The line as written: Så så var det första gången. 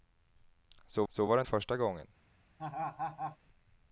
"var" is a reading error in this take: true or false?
false